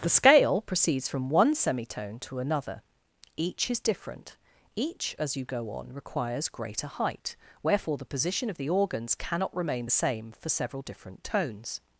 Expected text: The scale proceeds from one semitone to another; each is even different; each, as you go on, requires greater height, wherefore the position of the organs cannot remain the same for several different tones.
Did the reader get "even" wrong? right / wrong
wrong